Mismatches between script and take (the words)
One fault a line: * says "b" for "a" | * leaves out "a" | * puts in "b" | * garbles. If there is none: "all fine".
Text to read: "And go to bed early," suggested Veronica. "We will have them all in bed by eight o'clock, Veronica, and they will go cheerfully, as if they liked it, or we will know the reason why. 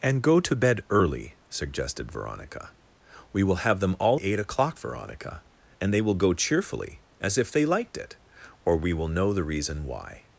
* leaves out "in bed by"